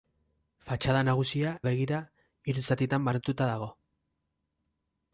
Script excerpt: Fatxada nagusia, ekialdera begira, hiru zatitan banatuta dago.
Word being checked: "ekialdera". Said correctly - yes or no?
no